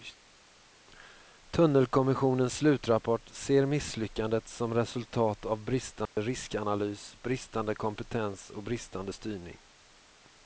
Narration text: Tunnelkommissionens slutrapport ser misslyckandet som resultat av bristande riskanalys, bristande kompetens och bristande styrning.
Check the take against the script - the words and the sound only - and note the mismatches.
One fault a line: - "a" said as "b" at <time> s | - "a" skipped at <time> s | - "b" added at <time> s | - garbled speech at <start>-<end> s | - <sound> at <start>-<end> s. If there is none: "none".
- dropout at 6.1-6.2 s